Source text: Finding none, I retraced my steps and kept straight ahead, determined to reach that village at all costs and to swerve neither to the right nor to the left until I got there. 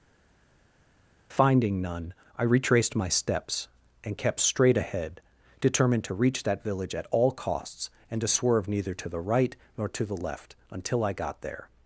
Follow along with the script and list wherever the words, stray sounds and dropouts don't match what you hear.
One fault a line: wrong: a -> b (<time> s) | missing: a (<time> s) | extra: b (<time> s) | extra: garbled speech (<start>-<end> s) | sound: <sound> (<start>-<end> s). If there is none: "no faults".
no faults